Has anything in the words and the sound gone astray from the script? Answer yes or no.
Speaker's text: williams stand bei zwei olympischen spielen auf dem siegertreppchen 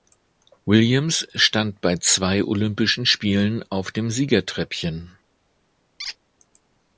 yes